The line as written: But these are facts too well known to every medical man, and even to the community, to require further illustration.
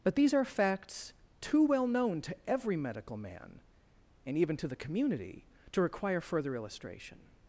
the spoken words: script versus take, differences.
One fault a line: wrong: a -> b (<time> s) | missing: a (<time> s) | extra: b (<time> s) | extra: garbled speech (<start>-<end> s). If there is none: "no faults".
no faults